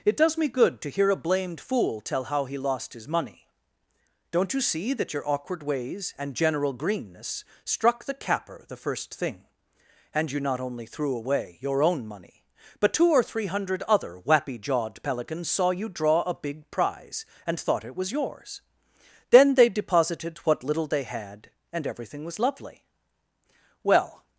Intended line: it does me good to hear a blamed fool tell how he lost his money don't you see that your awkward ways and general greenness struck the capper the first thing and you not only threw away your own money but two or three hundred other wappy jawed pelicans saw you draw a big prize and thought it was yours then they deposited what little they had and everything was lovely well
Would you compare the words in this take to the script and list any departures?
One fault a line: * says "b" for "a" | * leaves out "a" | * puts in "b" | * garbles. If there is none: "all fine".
all fine